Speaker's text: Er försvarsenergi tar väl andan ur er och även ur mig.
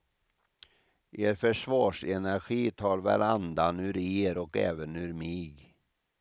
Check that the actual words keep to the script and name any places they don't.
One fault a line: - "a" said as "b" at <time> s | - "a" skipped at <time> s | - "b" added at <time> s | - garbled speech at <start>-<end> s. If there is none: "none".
none